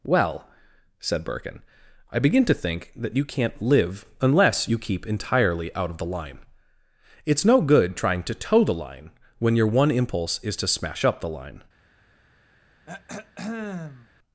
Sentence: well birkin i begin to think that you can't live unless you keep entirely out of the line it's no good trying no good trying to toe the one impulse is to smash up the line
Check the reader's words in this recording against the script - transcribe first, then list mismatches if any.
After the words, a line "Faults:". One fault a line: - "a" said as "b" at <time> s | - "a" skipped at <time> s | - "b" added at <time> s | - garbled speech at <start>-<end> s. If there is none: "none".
well said birkin i begin to think that you can't live unless you keep entirely out of the line it's no good trying to toe the line when your one impulse is to smash up the line
Faults:
- "said" added at 1.0 s
- "no good trying to toe the" said as "to toe the line when your" at 8.2 s